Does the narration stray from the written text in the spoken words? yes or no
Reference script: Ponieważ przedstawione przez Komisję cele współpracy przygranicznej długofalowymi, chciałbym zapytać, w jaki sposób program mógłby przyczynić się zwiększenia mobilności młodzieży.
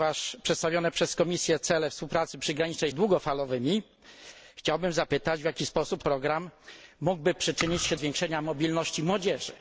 no